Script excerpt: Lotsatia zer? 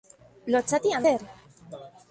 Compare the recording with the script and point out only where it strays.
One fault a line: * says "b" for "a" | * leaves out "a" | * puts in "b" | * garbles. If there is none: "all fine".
all fine